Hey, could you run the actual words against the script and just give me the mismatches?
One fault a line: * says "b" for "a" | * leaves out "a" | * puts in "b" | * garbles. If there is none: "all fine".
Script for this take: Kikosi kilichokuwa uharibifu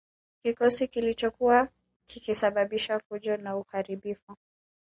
* puts in "kikisababisha fujo na"